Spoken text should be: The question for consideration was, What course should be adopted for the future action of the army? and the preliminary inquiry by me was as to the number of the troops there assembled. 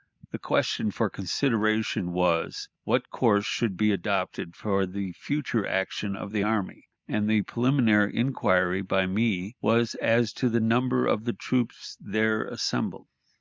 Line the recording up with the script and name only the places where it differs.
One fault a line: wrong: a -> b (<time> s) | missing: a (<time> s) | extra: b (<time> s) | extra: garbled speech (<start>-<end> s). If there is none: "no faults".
no faults